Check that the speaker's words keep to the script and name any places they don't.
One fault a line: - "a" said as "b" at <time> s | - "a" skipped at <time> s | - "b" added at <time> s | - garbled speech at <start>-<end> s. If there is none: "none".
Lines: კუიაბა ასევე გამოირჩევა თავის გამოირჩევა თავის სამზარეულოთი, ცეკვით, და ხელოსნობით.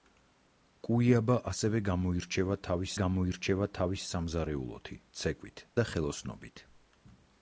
none